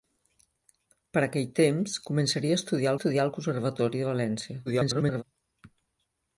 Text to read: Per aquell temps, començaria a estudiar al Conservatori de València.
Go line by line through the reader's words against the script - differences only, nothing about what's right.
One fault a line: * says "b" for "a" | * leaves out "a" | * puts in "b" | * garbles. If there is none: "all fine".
* puts in "estudiar"
* garbles